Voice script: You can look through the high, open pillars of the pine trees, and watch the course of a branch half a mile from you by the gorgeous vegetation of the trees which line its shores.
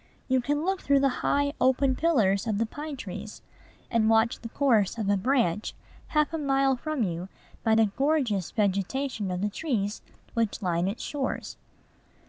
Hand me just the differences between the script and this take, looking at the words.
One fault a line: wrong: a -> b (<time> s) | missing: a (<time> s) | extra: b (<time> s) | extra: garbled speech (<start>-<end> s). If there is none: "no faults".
no faults